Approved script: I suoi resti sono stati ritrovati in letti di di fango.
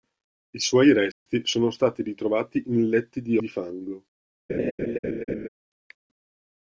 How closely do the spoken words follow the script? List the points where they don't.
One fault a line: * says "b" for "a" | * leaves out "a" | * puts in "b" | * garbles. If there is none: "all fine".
all fine